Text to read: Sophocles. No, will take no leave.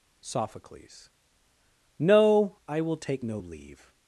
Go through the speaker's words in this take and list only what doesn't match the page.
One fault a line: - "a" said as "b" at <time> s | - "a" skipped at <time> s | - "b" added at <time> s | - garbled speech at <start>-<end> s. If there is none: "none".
- "I" added at 2.7 s